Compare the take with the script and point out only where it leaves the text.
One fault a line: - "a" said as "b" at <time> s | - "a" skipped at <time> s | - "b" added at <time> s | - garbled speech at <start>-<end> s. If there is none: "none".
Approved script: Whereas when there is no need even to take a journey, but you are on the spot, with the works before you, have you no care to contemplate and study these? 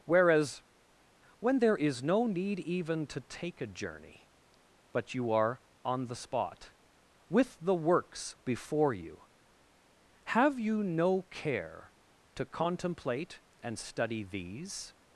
none